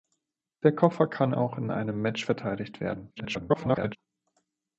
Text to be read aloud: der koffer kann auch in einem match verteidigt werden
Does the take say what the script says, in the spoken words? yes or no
no